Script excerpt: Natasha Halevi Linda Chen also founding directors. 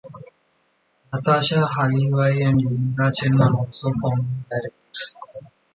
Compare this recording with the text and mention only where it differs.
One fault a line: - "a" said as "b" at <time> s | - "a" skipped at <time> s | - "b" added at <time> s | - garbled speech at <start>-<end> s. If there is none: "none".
- "and" added at 2.4 s
- "are" added at 3.4 s